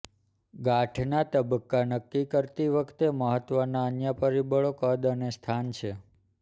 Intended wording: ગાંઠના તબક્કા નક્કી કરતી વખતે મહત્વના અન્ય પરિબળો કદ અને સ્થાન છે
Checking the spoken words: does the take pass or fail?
pass